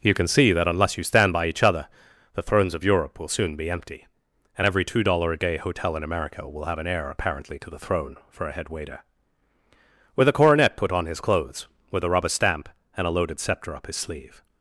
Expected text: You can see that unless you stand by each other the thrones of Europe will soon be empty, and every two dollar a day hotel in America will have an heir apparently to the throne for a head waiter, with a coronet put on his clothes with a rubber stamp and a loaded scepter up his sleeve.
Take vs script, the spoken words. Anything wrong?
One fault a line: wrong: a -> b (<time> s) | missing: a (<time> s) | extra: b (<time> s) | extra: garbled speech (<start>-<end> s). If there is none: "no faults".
no faults